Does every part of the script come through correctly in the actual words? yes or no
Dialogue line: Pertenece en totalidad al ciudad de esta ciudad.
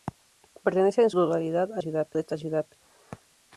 yes